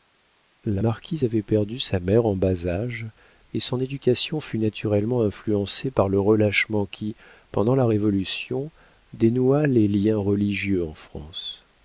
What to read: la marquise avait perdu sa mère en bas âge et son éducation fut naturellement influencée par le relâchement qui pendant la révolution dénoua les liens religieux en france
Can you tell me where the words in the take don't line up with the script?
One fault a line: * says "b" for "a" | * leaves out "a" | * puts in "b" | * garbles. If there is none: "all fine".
all fine